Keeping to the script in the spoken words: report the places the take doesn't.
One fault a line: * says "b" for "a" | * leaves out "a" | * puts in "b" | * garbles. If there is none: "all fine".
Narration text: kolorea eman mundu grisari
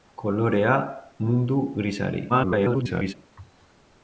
* leaves out "eman"
* garbles